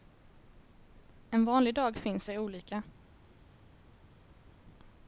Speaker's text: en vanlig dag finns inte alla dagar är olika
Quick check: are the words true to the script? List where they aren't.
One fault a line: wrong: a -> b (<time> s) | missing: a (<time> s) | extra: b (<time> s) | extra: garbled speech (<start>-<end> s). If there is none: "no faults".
missing: inte alla dagar (2.3 s)